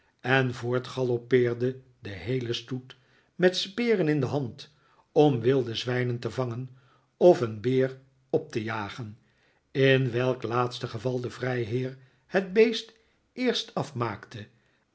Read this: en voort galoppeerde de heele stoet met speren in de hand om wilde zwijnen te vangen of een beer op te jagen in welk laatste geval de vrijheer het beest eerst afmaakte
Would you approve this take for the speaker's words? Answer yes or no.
yes